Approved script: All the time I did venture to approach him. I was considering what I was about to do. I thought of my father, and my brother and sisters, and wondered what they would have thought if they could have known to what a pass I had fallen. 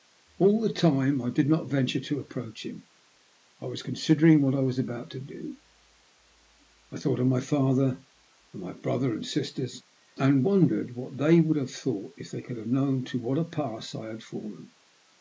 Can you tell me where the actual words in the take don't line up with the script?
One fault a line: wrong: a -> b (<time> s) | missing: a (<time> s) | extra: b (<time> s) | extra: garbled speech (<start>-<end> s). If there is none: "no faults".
extra: not (1.5 s)